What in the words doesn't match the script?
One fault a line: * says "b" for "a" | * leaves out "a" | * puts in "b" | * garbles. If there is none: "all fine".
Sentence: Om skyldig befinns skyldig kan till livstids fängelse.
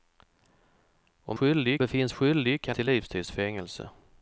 all fine